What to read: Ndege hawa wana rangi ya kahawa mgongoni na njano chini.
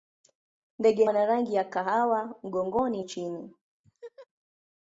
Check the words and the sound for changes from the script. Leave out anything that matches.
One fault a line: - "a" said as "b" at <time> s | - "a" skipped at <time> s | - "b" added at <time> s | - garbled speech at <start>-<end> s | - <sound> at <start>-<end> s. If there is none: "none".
- "hawa" skipped at 1.1 s
- "na njano" skipped at 3.0 s
- laugh at 3.8-4.3 s